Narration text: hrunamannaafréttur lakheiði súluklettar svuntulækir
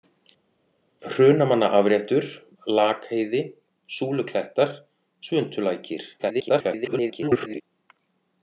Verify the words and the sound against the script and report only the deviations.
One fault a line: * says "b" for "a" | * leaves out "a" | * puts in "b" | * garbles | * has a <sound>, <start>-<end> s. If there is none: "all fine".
* garbles